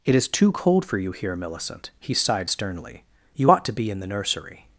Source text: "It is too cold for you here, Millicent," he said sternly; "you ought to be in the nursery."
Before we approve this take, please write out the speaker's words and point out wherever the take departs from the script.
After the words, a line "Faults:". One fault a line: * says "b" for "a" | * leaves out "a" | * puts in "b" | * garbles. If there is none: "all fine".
"It is too cold for you here, Millicent," he sighed sternly; "you ought to be in the nursery."
Faults:
* says "sighed" for "said"